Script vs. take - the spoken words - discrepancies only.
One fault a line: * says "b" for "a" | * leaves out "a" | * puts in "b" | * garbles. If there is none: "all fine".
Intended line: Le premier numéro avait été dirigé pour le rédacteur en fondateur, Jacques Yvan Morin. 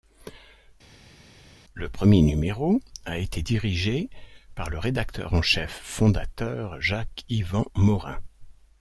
* says "a" for "avait"
* says "par" for "pour"
* puts in "chef"